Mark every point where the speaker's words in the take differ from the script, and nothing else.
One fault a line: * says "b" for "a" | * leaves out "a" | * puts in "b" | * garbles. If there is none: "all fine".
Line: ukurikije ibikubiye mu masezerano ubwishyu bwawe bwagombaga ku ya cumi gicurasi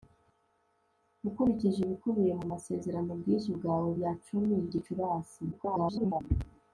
* leaves out "bwagombaga ku"
* garbles